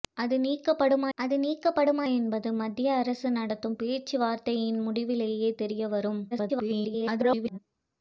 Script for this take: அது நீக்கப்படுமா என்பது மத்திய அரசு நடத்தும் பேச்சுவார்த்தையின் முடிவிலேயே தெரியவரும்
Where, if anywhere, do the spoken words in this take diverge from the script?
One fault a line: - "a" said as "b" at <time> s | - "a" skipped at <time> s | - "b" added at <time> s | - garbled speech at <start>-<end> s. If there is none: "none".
- "அது நீக்கப்படுமா" added at 1.2 s
- garbled speech at 6.3-7.6 s